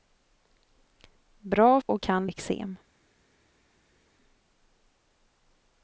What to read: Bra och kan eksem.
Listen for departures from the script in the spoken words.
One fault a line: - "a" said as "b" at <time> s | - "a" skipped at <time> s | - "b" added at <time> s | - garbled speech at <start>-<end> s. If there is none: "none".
none